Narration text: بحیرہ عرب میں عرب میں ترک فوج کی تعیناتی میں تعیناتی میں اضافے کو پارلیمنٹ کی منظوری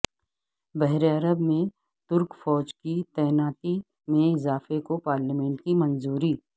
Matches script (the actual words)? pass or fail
fail